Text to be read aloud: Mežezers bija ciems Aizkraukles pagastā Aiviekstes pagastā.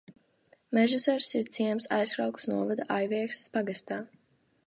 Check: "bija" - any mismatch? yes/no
yes